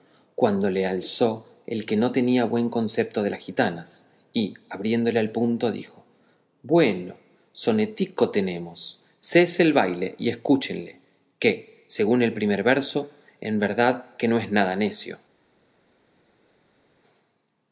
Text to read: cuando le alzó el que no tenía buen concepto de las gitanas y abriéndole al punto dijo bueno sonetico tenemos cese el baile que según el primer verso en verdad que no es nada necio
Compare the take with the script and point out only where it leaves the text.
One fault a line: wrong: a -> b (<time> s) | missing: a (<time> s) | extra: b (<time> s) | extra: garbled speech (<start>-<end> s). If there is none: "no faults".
extra: y escúchenle (10.2 s)